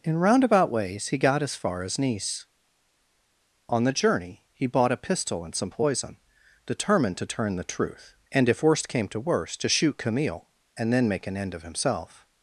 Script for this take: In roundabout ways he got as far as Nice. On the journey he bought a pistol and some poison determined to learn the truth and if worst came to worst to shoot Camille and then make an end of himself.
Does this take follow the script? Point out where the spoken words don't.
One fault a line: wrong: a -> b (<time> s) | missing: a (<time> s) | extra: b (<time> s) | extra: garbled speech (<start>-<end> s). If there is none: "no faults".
wrong: learn -> turn (7.3 s)